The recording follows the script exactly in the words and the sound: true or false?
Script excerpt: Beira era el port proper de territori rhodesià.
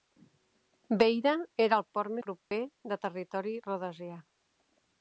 false